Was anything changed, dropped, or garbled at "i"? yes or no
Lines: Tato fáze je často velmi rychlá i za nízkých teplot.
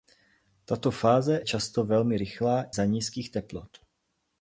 yes